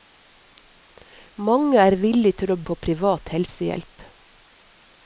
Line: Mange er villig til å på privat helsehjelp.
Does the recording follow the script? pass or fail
pass